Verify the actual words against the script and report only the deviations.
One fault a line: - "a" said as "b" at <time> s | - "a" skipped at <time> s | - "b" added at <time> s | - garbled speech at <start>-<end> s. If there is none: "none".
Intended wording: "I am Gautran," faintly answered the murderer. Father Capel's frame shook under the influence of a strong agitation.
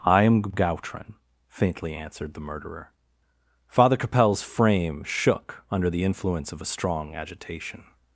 none